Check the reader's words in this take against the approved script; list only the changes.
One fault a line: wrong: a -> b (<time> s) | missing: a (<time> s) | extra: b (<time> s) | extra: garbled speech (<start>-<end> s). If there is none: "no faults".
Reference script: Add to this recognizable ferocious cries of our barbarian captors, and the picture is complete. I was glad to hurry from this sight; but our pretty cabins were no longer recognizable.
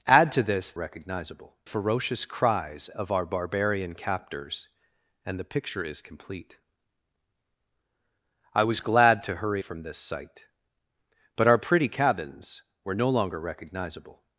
no faults